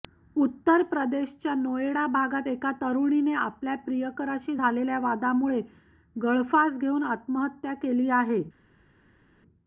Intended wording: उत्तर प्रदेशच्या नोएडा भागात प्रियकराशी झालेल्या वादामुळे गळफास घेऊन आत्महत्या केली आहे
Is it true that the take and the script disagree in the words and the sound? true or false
true